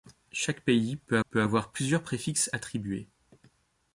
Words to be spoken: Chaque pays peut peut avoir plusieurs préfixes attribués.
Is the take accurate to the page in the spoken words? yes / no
yes